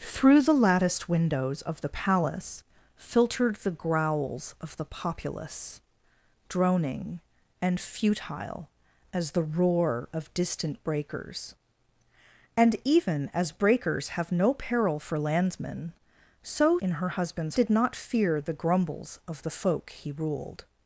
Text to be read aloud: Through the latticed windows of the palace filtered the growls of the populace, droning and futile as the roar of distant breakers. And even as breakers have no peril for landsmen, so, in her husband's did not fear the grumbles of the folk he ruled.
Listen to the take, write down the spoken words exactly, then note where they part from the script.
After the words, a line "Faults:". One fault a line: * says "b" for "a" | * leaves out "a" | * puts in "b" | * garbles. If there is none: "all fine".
Through the latticed windows of the palace filtered the growls of the populace, droning and futile as the roar of distant breakers. And even as breakers have no peril for landsmen, so, in her husband's did not fear the grumbles of the folk he ruled.
Faults:
all fine